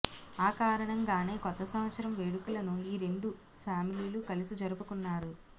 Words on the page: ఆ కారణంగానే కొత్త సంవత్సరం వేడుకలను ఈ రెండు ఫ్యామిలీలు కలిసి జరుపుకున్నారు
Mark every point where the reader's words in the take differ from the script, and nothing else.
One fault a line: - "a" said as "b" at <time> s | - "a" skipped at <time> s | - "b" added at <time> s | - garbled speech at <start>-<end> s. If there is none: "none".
none